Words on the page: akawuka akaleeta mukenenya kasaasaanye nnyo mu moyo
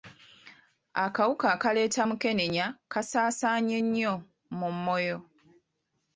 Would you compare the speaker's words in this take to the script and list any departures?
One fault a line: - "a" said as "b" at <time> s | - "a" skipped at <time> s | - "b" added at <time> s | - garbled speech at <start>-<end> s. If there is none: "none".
none